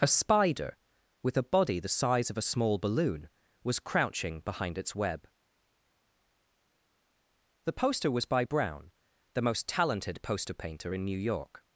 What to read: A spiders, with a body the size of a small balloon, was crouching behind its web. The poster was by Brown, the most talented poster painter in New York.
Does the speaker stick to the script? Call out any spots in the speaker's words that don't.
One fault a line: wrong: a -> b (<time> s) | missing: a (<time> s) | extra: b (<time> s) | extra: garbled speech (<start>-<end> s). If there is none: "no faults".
wrong: spiders -> spider (0.1 s)